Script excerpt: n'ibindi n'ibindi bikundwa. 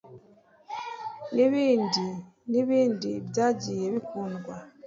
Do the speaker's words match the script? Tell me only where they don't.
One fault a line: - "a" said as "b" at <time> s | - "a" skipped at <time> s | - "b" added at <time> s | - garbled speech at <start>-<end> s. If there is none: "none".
- "byagiye" added at 3.3 s